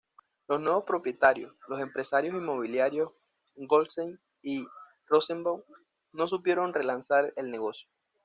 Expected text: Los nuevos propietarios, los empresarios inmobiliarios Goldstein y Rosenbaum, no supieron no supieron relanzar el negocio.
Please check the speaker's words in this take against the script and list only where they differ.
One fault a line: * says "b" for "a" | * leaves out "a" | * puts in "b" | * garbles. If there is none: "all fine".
* leaves out "no supieron"